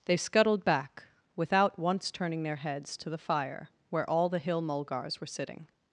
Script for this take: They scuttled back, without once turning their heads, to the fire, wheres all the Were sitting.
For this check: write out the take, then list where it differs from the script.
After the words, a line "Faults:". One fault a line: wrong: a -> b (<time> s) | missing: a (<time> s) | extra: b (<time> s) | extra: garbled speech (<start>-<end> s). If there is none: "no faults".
They scuttled back, without once turning their heads, to the fire, where all the Hill mulgars were sitting.
Faults:
wrong: wheres -> where (3.9 s)
extra: Hill mulgars (4.4 s)